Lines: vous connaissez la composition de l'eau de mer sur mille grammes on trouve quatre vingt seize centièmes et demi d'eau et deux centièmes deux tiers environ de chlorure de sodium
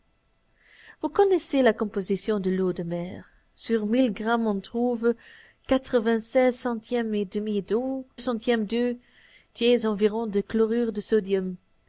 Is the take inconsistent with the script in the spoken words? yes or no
yes